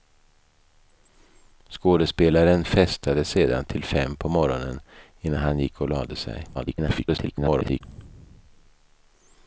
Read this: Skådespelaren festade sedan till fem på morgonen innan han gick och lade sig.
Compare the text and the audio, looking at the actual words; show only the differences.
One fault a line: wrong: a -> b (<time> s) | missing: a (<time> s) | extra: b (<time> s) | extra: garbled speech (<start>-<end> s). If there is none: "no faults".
extra: garbled speech (6.5-7.8 s)